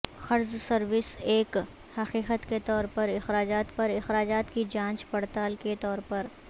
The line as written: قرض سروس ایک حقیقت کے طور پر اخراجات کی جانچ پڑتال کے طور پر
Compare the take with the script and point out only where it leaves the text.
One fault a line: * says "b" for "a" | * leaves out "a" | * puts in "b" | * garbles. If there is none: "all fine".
* puts in "پر اخراجات"